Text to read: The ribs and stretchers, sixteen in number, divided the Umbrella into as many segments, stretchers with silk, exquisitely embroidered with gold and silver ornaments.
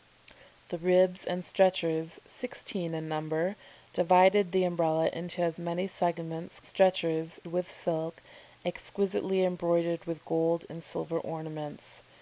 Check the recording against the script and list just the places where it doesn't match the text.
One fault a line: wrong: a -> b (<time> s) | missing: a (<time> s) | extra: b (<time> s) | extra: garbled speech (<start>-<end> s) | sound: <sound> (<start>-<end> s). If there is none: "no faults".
no faults